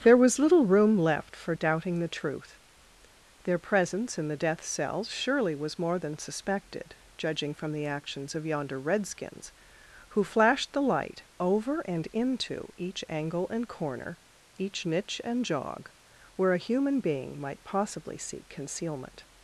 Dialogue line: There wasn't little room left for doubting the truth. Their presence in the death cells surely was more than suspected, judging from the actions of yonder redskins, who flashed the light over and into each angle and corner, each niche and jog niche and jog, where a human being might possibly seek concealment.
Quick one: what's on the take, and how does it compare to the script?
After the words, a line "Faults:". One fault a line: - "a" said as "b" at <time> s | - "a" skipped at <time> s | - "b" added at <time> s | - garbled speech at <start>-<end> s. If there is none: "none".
There was little room left for doubting the truth. Their presence in the death cells surely was more than suspected, judging from the actions of yonder redskins, who flashed the light over and into each angle and corner, each niche and jog, where a human being might possibly seek concealment.
Faults:
- "wasn't" said as "was" at 0.2 s
- "niche and jog" skipped at 15.9 s